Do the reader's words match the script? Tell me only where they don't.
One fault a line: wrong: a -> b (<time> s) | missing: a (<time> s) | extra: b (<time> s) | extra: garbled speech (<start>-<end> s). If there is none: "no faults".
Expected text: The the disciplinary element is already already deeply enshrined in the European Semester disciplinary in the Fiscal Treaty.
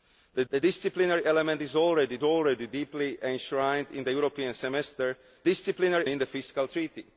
no faults